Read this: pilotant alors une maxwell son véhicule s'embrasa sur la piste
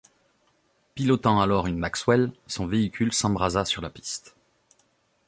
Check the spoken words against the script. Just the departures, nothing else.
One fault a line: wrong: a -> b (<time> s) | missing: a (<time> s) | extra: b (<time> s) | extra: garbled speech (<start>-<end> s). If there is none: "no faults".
no faults